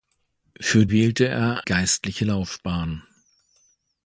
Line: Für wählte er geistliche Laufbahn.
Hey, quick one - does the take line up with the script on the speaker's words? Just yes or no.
yes